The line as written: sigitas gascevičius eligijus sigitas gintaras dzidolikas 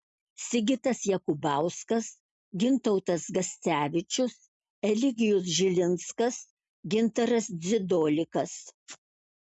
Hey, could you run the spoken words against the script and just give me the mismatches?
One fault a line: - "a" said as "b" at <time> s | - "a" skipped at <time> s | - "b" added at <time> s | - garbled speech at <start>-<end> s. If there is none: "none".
- "jakubauskas gintautas" added at 1.1 s
- "sigitas" said as "žilinskas" at 5.6 s